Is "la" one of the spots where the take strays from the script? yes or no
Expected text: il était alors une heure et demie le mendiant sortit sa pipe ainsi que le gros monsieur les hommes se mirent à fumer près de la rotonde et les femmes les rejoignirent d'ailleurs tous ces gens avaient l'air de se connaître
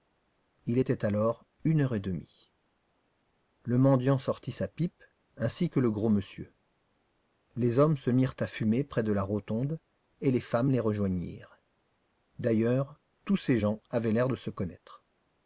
no